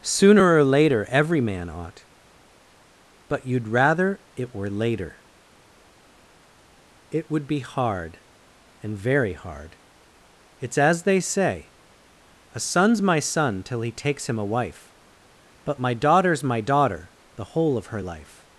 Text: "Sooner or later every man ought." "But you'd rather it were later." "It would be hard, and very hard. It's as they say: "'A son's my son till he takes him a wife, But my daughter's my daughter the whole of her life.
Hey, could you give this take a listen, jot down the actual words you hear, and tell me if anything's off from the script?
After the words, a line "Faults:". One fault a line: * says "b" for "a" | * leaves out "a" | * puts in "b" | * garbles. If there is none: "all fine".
"Sooner or later every man ought." "But you'd rather it were later." "It would be hard, and very hard. It's as they say: "'A son's my son till he takes him a wife, But my daughter's my daughter the whole of her life.
Faults:
all fine